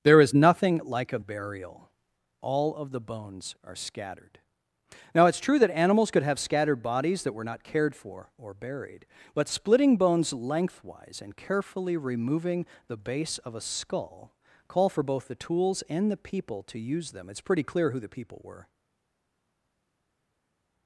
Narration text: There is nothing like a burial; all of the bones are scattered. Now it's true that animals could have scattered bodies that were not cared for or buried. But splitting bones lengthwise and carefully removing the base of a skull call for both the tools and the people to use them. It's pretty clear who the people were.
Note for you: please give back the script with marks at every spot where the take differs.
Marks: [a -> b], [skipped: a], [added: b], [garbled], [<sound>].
There is nothing like a burial; all of the bones are scattered. Now it's true that animals could have scattered bodies that were not cared for or buried. But splitting bones lengthwise and carefully removing the base of a skull call for both the tools and the people to use them. It's pretty clear who the people were.